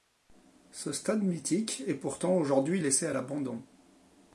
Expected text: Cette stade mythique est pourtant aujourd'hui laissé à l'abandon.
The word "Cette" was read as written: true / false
false